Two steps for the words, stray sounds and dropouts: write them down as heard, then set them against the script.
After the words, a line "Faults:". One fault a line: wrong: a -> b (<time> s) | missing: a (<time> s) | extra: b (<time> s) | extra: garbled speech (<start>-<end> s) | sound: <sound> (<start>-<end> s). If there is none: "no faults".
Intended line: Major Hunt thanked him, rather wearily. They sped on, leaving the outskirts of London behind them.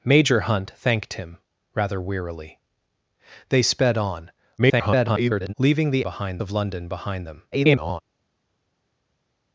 Major Hunt thanked him, rather wearily. They sped on, [garbled] leaving the behind of London behind them. [garbled]
Faults:
extra: garbled speech (4.6-5.5 s)
wrong: outskirts -> behind (6.0 s)
extra: garbled speech (7.5-8.0 s)